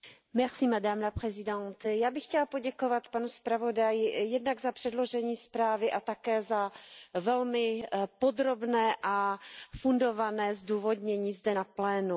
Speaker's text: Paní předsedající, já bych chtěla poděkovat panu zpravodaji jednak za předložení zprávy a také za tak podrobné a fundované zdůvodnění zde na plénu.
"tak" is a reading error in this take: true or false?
true